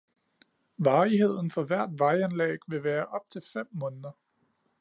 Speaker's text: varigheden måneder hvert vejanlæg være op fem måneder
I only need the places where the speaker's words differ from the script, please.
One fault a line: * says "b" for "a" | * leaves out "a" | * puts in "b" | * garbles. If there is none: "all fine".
* says "for" for "måneder"
* puts in "vil"
* puts in "til"